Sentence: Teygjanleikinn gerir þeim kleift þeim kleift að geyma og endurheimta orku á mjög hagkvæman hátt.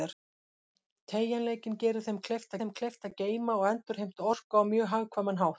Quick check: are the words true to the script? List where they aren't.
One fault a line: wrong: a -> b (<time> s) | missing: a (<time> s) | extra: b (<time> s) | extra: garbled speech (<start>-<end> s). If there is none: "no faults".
no faults